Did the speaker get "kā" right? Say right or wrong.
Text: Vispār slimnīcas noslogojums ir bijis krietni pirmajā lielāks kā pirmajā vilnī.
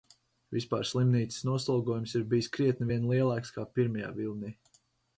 right